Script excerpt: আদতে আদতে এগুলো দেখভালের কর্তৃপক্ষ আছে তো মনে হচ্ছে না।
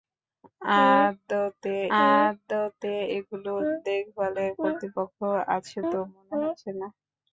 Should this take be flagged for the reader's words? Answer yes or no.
no